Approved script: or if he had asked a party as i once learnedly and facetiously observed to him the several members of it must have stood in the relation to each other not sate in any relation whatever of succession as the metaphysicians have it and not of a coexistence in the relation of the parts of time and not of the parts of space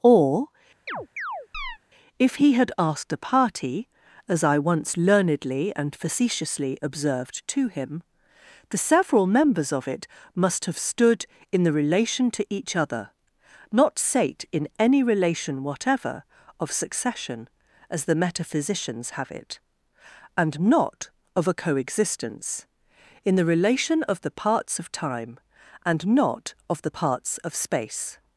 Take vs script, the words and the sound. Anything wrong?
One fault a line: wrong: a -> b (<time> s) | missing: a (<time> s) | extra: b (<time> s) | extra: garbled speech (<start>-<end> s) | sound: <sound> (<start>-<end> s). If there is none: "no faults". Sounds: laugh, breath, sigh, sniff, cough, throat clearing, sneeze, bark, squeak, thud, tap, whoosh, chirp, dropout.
sound: chirp (0.9-1.8 s)